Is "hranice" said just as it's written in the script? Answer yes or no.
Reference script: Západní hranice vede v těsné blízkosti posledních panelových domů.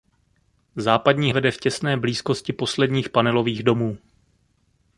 no